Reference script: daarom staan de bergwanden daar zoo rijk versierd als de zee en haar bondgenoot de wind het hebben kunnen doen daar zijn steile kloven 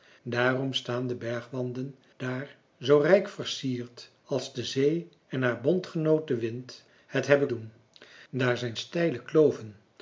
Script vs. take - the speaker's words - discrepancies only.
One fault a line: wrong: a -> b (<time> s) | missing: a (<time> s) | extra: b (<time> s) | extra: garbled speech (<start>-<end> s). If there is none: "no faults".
missing: kunnen (7.5 s)